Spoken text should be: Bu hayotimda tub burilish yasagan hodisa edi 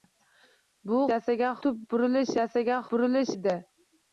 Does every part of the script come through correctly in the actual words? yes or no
no